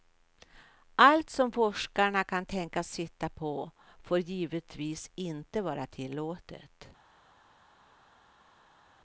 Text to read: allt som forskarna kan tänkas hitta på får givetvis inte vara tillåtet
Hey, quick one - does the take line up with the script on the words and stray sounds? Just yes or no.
yes